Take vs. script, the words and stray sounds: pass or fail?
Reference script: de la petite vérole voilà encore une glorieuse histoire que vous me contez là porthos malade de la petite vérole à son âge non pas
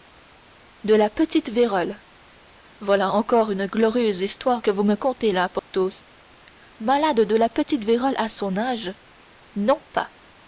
fail